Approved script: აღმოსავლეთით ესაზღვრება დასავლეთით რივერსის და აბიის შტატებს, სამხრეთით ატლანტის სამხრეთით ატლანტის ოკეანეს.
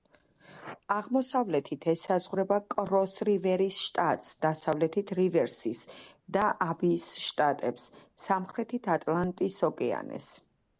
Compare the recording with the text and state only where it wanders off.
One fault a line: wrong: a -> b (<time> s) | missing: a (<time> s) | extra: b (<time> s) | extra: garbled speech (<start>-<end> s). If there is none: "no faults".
extra: კროს რივერის შტატს (2.8 s)
missing: სამხრეთით ატლანტის (9.6 s)